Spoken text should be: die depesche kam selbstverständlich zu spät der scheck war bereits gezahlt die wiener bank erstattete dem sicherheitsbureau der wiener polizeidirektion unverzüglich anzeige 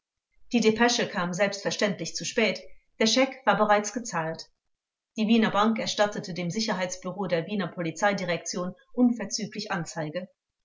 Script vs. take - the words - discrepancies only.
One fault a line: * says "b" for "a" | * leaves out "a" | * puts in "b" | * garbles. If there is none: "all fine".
all fine